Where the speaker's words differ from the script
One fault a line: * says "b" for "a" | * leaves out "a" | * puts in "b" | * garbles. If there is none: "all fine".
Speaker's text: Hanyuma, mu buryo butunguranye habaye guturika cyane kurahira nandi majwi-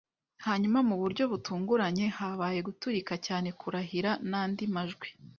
all fine